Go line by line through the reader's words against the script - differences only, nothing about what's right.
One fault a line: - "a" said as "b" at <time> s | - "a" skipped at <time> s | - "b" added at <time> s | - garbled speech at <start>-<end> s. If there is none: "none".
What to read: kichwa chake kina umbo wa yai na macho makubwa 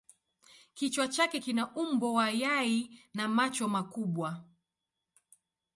none